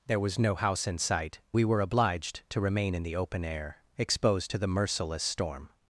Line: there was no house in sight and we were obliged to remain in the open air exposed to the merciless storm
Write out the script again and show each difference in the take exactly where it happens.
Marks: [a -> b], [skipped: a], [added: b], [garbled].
there was no house in sight [skipped: and] we were obliged to remain in the open air exposed to the merciless storm